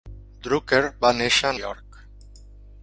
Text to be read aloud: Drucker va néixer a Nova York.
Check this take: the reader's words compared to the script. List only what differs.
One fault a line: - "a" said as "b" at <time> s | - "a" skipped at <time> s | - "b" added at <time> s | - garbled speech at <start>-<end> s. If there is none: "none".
- "Nova" skipped at 1.5 s